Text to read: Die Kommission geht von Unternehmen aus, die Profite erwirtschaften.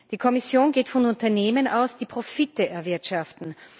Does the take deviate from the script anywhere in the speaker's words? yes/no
no